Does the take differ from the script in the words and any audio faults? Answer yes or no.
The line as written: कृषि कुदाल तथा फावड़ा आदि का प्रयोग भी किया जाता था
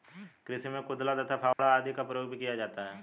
yes